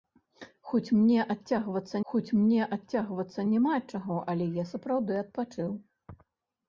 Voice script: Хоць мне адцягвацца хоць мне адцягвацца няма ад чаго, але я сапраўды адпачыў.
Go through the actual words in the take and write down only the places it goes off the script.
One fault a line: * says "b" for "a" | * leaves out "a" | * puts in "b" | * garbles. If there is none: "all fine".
all fine